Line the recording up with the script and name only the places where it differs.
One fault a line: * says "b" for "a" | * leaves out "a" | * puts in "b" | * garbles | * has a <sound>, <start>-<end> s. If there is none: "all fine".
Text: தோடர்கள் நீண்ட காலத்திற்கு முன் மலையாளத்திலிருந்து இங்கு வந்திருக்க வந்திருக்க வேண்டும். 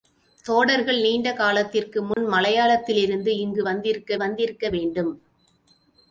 * has a dropout, 2.1-2.2 s